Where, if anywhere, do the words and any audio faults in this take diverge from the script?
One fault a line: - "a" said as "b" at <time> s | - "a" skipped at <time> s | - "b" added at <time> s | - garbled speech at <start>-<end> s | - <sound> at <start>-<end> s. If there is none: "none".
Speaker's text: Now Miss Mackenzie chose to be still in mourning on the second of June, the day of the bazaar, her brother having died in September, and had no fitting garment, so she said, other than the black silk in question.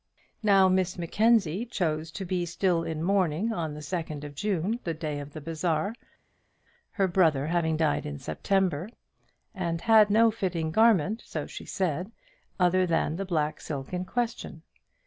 none